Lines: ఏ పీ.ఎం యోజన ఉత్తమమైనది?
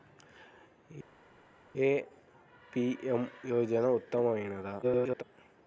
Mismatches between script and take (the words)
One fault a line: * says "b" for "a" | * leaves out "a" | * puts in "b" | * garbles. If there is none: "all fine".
* garbles